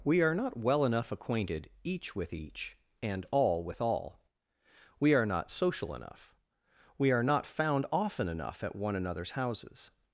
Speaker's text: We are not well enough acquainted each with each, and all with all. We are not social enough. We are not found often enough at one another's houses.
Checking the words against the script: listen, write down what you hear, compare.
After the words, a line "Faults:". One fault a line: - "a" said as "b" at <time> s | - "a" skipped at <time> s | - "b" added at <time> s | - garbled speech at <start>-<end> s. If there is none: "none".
We are not well enough acquainted each with each, and all with all. We are not social enough. We are not found often enough at one another's houses.
Faults:
none